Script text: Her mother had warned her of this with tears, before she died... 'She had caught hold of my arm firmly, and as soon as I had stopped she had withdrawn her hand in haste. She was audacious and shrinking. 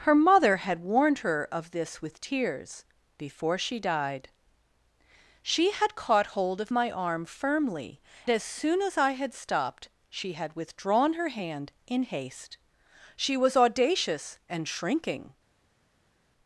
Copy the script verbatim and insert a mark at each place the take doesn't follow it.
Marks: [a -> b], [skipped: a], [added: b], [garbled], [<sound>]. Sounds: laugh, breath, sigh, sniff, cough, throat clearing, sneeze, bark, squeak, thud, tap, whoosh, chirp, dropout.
Her mother had warned her of this with tears, before she died... 'She had caught hold of my arm firmly, [skipped: and] as soon as I had stopped she had withdrawn her hand in haste. She was audacious and shrinking.